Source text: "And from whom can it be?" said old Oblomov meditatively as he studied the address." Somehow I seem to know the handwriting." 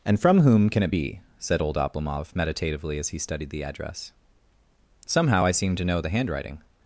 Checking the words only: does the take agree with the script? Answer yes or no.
yes